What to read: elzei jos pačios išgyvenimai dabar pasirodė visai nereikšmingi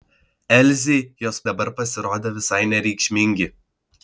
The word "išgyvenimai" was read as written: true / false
false